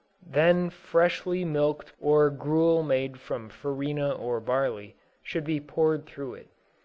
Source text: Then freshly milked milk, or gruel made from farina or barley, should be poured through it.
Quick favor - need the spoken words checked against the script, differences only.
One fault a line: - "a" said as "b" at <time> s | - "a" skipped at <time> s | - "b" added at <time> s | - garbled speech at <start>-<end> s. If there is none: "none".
- "milk" skipped at 1.9 s